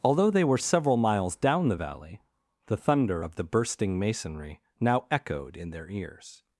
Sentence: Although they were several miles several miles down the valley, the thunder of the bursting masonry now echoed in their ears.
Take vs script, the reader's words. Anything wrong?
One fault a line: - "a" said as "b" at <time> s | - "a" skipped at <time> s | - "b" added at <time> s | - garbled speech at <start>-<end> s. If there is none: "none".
- "several miles" skipped at 1.4 s